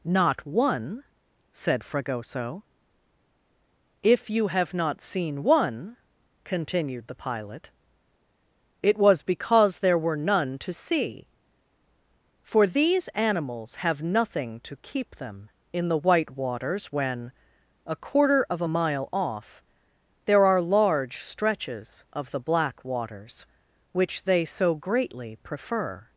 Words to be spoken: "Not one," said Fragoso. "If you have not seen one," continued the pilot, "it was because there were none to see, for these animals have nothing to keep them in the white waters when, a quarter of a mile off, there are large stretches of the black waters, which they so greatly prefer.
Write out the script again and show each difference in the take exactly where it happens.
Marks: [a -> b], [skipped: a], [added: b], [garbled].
"Not one," said Fragoso. "If you have not seen one," continued the pilot, "it was because there were none to see, for these animals have nothing to keep them in the white waters when, a quarter of a mile off, there are large stretches of the black waters, which they so greatly prefer.